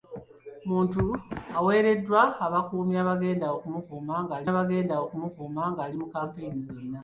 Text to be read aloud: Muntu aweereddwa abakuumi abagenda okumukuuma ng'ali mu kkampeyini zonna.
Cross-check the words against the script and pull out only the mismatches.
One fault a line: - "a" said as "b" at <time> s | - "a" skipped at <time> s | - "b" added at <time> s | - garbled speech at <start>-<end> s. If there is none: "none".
- "abagenda okumukuuma ng'ali" added at 4.5 s